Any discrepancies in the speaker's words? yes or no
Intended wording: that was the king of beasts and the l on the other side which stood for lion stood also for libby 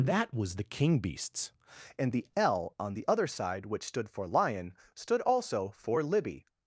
yes